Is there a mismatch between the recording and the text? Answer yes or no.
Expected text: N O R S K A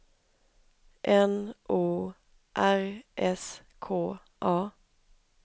no